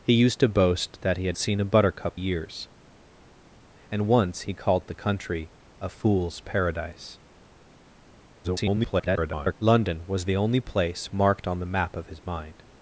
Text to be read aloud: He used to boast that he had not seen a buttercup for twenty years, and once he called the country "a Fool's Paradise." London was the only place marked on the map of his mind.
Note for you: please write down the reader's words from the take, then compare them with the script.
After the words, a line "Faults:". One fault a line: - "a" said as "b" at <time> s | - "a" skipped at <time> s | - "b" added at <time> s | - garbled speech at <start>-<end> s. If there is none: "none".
He used to boast that he had seen a buttercup years, and once he called the country "a Fool's Paradise." [garbled] London was the only place marked on the map of his mind.
Faults:
- "not" skipped at 1.4 s
- "for twenty" skipped at 2.2 s
- garbled speech at 8.4-9.5 s